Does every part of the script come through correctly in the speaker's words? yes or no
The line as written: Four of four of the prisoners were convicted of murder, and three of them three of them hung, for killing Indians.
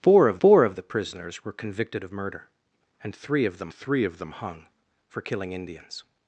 yes